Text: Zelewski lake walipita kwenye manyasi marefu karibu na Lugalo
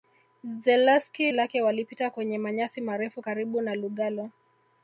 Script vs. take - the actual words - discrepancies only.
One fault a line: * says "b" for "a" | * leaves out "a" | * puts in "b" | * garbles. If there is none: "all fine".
all fine